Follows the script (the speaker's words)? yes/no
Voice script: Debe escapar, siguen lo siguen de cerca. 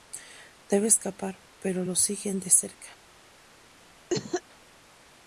no